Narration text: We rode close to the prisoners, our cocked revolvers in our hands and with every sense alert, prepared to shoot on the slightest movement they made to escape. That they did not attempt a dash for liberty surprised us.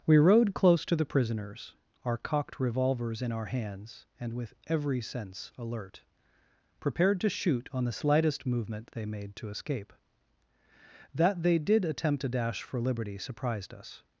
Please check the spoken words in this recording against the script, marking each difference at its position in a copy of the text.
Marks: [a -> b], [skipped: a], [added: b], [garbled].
We rode close to the prisoners, our cocked revolvers in our hands and with every sense alert, prepared to shoot on the slightest movement they made to escape. That they did [skipped: not] attempt a dash for liberty surprised us.